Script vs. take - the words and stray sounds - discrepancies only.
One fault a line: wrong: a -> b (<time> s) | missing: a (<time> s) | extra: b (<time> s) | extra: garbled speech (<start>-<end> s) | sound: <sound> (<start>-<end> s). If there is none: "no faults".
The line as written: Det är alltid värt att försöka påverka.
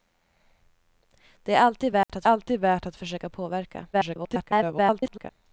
sound: dropout (2.0-2.1 s)
extra: alltid värt att (2.3 s)
extra: garbled speech (3.9-5.3 s)